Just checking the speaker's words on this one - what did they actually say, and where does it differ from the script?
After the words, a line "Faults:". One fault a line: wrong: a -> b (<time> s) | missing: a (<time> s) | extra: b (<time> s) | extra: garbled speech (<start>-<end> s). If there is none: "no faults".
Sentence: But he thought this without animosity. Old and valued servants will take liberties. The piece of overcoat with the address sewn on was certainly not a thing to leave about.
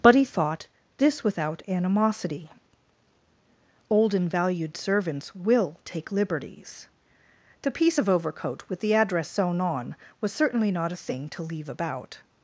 But he thought this without animosity. Old and valued servants will take liberties. The piece of overcoat with the address sewn on was certainly not a thing to leave about.
Faults:
no faults